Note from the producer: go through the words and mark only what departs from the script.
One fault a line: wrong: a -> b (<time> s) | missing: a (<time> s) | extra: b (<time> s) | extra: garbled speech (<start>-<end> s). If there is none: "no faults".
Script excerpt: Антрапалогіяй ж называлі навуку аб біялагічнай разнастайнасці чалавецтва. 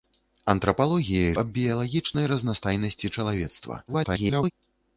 missing: ж называлі навуку (1.4 s)
extra: garbled speech (3.9-4.5 s)